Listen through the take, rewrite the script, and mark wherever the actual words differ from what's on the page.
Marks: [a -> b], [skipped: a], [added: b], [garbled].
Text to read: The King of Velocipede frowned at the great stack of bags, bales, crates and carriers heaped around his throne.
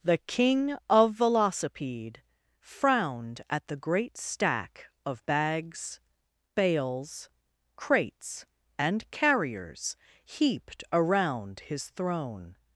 The King of Velocipede frowned at the great stack of bags, bales, crates and carriers heaped around his throne.